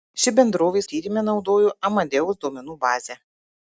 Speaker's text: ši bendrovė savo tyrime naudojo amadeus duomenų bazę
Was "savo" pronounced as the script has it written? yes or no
no